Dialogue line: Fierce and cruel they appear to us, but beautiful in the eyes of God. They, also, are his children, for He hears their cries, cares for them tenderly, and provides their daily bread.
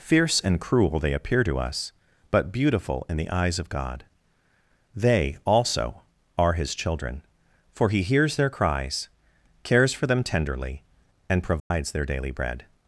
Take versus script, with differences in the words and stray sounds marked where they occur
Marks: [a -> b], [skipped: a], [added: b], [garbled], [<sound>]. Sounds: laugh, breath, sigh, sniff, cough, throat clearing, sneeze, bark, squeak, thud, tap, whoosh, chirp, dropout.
Fierce and cruel they appear to us, but beautiful in the eyes of God. They, also, are his children, for He hears their cries, cares for them tenderly, and provides [dropout] their daily bread.